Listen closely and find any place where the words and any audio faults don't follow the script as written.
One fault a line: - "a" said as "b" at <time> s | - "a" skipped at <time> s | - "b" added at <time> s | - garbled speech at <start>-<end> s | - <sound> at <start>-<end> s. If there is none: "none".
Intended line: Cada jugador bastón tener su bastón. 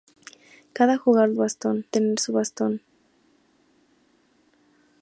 none